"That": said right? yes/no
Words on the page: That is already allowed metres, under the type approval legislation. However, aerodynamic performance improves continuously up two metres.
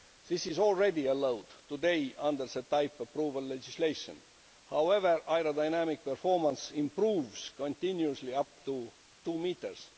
no